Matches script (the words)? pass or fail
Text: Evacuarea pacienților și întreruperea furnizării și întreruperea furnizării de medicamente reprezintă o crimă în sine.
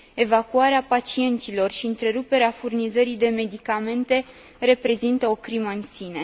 fail